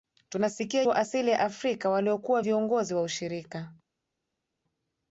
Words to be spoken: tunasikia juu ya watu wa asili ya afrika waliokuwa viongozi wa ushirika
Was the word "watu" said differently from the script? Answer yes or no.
yes